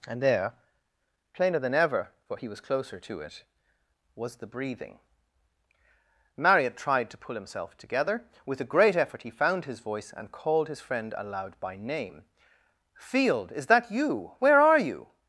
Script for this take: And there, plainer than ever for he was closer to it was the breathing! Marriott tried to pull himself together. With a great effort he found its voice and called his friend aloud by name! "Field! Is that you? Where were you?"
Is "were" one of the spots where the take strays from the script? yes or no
yes